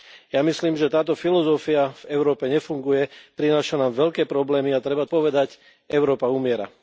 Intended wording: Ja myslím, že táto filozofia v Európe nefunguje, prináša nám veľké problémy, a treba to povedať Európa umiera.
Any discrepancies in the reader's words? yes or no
yes